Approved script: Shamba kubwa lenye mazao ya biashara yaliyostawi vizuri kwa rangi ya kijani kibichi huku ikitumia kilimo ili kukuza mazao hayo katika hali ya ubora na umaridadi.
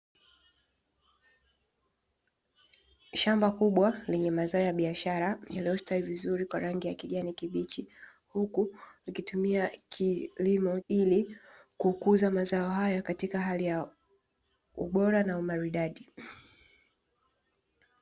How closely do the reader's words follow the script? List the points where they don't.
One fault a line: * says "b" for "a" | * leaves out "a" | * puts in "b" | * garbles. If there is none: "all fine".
all fine